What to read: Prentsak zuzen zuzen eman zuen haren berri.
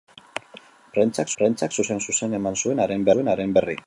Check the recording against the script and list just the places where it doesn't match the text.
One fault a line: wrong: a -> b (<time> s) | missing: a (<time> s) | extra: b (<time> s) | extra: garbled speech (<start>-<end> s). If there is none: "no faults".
extra: prentsak (1.4 s)
extra: zuen haren (3.1 s)